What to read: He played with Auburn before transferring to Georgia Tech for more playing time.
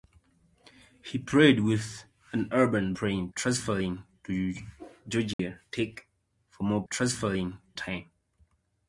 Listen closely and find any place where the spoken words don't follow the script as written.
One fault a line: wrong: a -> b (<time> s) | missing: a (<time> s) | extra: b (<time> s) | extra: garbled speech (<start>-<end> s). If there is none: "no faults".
wrong: before -> playing (2.9 s)
wrong: playing -> transferring (6.9 s)